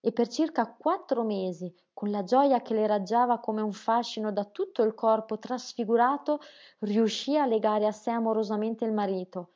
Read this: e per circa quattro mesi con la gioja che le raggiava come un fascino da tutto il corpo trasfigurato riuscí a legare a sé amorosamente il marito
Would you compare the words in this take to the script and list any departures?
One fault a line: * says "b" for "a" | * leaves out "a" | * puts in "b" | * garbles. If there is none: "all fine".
all fine